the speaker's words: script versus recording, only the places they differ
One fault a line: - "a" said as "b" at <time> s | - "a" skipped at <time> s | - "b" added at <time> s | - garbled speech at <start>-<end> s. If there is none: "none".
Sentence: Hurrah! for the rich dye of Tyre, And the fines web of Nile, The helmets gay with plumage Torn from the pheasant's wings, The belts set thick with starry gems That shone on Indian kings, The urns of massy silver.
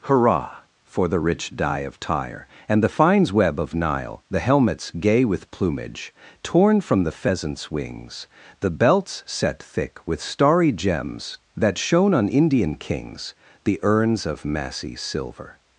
none